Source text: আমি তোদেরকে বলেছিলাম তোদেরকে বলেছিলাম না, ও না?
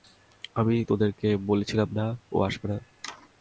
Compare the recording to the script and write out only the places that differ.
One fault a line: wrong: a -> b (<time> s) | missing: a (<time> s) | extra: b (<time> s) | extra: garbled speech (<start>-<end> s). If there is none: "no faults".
missing: তোদেরকে বলেছিলাম (1.9 s)
extra: আসবে (2.4 s)